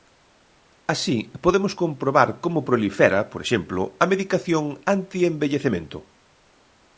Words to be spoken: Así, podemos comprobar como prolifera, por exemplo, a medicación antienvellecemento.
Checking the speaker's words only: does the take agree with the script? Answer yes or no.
yes